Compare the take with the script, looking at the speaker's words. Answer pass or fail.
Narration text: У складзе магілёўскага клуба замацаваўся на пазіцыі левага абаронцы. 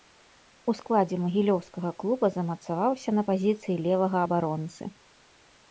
pass